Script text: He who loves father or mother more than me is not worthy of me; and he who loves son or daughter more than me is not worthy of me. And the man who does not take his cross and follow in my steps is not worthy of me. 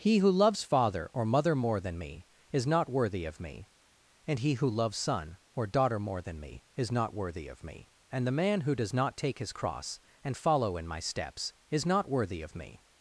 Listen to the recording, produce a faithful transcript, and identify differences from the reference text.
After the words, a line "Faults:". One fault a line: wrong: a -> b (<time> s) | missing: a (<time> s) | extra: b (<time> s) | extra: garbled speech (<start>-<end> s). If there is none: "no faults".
He who loves father or mother more than me is not worthy of me; and he who loves son or daughter more than me is not worthy of me. And the man who does not take his cross and follow in my steps is not worthy of me.
Faults:
no faults